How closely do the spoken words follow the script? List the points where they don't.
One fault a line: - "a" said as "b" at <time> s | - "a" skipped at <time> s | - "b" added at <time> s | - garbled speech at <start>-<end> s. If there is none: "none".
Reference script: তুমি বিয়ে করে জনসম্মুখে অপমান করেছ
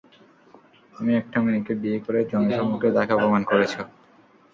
- "একটা মেয়েকে" added at 1.1 s
- "তাকে" added at 3.0 s